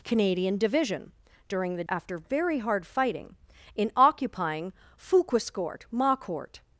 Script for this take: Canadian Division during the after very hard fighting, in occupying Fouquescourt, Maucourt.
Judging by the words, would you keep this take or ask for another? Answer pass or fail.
pass